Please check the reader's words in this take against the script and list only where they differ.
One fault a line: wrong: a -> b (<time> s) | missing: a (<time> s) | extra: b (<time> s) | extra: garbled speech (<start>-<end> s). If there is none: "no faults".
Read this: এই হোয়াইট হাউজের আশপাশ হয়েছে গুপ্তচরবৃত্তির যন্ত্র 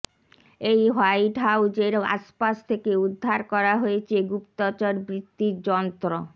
extra: থেকে উদ্ধার করা (2.7 s)